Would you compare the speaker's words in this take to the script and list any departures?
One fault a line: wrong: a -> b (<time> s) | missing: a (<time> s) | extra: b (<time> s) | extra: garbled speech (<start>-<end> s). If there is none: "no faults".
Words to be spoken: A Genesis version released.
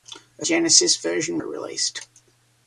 no faults